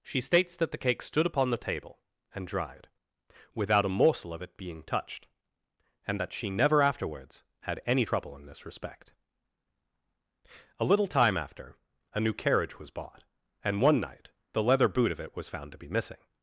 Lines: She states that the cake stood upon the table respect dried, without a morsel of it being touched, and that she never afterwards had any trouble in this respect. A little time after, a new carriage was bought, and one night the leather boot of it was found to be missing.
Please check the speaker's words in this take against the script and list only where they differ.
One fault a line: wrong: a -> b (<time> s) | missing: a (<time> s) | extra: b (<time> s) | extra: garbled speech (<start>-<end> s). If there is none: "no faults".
wrong: respect -> and (2.3 s)